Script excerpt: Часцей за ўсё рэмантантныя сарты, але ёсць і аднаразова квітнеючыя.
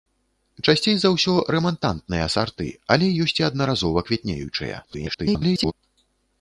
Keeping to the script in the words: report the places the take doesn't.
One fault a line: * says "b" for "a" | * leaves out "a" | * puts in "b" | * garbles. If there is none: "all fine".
* garbles